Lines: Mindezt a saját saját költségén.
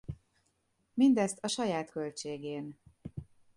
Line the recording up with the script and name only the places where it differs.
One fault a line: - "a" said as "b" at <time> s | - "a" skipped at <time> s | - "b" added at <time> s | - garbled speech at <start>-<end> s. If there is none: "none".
- "saját" skipped at 1.9 s